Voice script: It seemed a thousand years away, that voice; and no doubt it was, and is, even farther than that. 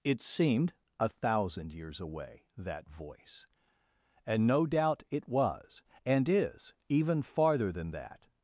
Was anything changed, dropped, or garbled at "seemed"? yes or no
no